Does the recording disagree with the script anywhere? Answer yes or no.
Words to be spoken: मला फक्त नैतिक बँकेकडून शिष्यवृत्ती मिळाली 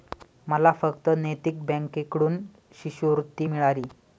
no